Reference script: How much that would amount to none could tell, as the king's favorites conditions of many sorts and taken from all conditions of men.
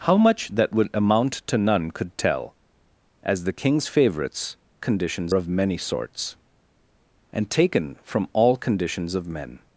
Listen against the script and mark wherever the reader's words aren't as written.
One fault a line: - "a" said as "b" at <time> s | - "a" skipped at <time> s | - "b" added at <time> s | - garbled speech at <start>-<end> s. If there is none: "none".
none